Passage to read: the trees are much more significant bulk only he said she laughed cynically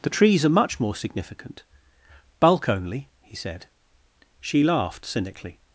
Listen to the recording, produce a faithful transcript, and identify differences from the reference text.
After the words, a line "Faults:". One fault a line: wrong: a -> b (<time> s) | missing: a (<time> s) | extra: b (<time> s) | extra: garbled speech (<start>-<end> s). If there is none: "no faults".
the trees are much more significant bulk only he said she laughed cynically
Faults:
no faults